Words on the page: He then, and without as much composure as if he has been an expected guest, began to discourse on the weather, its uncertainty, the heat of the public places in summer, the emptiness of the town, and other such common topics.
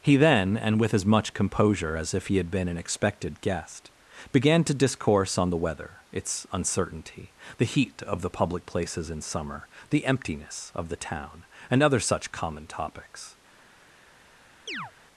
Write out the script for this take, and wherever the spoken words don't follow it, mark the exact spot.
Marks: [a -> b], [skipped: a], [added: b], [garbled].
He then, and [without -> with] as much composure as if he [has -> had] been an expected guest, began to discourse on the weather, its uncertainty, the heat of the public places in summer, the emptiness of the town, and other such common topics.